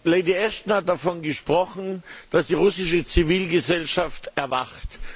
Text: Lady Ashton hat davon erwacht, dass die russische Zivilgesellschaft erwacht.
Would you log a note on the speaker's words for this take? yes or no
yes